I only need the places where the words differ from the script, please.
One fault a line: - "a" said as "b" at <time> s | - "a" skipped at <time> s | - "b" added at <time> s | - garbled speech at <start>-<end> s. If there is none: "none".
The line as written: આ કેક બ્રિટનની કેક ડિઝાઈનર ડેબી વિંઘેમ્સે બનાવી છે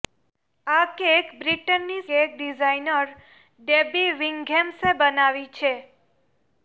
none